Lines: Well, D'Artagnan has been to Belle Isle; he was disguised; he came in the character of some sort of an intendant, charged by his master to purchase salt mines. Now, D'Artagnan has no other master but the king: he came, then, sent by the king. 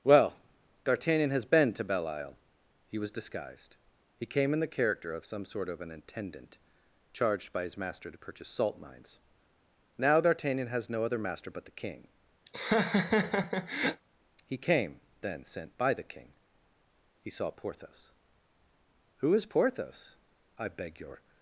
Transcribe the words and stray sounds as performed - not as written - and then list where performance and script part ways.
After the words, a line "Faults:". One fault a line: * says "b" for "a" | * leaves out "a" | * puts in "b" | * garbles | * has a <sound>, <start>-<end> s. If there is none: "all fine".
Well, D'Artagnan has been to Belle Isle; he was disguised; he came in the character of some sort of an intendant, charged by his master to purchase salt mines. Now, D'Artagnan has no other master but the king: he came, then, sent by the king. He saw Porthos." "Who is Porthos?" "I beg your
Faults:
* has a laugh, 12.5-14.0 s
* puts in "He saw Porthos Who is Porthos I beg your"